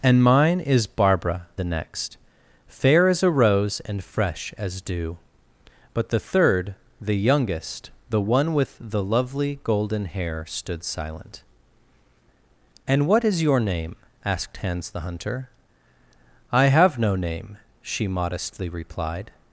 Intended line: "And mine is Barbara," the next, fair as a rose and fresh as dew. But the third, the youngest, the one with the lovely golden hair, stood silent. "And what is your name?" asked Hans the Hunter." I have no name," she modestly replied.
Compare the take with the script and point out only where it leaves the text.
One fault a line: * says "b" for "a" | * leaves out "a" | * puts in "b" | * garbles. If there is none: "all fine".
all fine